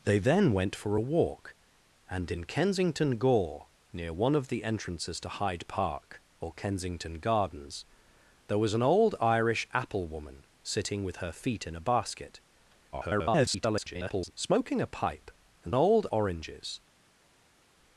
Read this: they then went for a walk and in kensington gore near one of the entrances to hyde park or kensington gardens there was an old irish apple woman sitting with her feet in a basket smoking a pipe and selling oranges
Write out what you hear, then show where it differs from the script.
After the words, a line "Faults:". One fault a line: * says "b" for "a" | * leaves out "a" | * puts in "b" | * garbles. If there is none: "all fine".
they then went for a walk and in kensington gore near one of the entrances to hyde park or kensington gardens there was an old irish apple woman sitting with her feet in a basket [garbled] smoking a pipe and old oranges
Faults:
* garbles
* says "old" for "selling"